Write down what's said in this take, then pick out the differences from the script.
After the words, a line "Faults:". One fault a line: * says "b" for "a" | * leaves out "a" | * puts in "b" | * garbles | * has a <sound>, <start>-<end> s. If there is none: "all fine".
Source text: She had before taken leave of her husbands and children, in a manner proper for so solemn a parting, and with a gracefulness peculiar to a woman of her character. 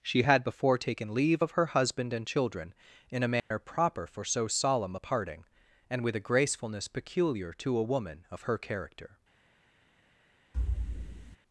She had before taken leave of her husband and children, in a manner proper for so solemn a parting, and with a gracefulness peculiar to a woman of her character.
Faults:
* says "husband" for "husbands"
* has a dropout, 3.4-3.5 s
* has a thud, 10.5-11.4 s